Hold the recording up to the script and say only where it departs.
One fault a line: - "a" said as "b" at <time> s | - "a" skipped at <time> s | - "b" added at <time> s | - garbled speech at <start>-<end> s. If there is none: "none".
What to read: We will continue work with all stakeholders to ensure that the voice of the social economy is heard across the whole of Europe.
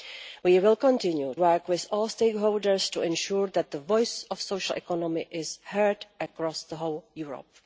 none